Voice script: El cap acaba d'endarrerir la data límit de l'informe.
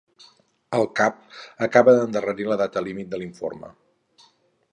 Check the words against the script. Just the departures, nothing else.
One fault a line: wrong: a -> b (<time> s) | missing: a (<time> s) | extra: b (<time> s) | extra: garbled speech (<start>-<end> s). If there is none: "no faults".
no faults